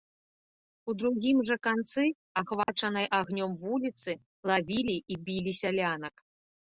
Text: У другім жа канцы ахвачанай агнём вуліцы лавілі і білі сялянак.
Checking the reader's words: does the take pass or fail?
pass